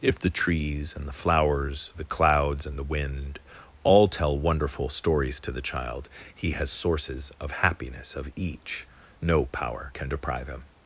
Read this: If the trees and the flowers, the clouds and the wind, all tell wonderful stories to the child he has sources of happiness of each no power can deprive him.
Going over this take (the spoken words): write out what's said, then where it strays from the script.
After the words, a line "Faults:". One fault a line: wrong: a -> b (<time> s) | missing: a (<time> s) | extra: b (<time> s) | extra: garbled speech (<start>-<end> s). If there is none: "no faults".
If the trees and the flowers, the clouds and the wind, all tell wonderful stories to the child he has sources of happiness of each no power can deprive him.
Faults:
no faults